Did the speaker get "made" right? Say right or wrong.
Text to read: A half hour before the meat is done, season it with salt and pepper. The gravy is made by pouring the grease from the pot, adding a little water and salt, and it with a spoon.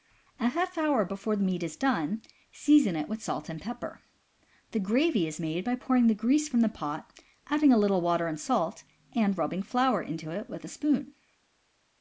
right